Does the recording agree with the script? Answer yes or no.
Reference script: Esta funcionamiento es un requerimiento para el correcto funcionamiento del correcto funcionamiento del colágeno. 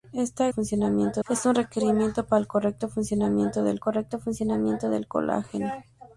yes